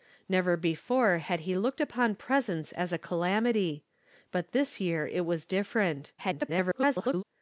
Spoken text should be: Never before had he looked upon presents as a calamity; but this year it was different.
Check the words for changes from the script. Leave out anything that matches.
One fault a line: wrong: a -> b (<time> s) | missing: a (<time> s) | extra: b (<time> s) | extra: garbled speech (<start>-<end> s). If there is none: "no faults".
extra: garbled speech (6.2-7.2 s)